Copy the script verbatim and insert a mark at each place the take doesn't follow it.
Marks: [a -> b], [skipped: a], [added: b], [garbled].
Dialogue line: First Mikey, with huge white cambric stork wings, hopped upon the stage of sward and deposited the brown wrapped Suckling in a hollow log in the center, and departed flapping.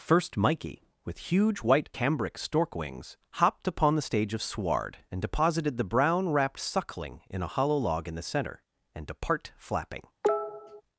First Mikey, with huge white cambric stork wings, hopped upon the stage of sward and deposited the brown wrapped Suckling in a hollow log in the center, and [departed -> depart] flapping.